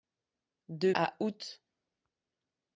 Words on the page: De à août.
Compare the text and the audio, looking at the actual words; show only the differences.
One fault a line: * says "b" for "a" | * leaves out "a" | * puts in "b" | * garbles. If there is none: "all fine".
all fine